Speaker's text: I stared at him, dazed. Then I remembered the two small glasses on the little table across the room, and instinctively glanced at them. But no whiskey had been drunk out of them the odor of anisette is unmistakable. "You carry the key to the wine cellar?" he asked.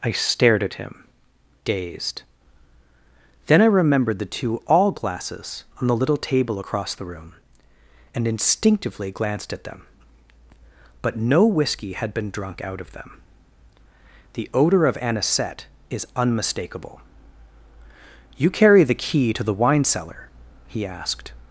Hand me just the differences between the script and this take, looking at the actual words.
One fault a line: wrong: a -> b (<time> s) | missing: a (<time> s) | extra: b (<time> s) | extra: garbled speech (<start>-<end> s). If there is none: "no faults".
wrong: small -> all (4.7 s)